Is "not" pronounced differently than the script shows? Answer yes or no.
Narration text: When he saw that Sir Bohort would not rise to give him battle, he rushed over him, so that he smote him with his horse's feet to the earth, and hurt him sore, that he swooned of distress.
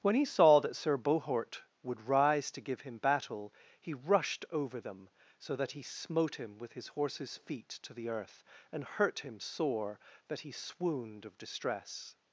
yes